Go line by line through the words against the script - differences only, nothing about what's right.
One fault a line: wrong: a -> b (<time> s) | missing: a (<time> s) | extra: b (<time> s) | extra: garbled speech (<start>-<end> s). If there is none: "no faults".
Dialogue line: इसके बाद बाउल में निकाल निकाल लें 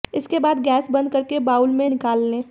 extra: गैस बंद करके (0.6 s)
missing: निकाल (2.2 s)